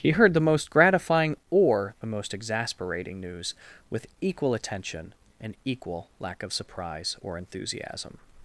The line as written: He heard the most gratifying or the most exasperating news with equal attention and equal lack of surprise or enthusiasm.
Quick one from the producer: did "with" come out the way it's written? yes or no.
yes